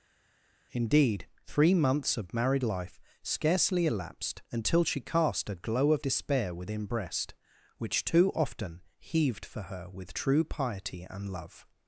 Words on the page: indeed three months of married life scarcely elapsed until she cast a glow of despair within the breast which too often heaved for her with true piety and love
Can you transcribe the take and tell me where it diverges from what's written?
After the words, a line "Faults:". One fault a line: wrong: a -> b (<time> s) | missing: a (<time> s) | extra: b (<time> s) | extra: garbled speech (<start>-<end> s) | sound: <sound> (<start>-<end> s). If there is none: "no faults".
indeed three months of married life scarcely elapsed until she cast a glow of despair within breast which too often heaved for her with true piety and love
Faults:
missing: the (6.9 s)